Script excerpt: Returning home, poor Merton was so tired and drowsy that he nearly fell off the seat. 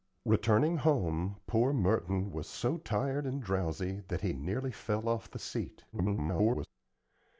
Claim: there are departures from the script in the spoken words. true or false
true